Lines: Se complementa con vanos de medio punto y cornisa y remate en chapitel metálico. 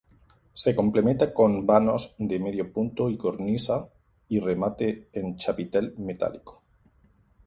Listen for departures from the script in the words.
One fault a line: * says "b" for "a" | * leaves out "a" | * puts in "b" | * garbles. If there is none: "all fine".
all fine